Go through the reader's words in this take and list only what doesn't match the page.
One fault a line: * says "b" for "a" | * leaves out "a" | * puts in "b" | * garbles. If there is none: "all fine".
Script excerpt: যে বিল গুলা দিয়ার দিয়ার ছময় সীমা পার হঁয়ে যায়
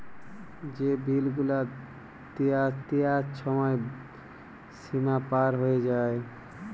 all fine